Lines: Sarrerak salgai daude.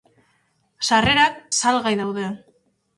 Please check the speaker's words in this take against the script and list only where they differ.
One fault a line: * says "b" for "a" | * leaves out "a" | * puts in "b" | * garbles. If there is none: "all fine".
all fine